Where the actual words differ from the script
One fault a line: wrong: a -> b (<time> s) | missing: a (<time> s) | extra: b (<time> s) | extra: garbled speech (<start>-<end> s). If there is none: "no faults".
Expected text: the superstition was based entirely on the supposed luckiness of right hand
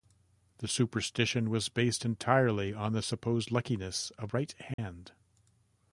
no faults